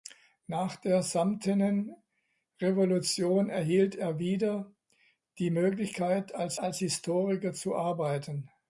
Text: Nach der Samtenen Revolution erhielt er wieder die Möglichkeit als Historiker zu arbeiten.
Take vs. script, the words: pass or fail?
fail